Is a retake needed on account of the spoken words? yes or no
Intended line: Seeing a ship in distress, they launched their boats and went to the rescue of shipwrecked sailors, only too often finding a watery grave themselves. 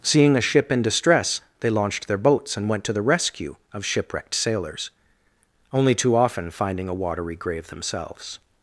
no